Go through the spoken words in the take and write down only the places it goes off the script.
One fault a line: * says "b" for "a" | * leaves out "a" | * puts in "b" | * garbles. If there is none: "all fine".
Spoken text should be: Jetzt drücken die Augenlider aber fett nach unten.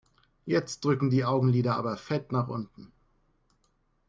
all fine